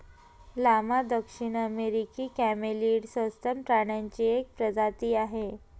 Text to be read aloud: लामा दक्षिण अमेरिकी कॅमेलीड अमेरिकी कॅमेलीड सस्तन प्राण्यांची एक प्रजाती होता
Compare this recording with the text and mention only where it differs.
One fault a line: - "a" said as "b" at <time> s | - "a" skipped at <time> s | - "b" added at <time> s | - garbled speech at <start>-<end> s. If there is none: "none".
- "अमेरिकी कॅमेलीड" skipped at 3.0 s
- "होता" said as "आहे" at 5.1 s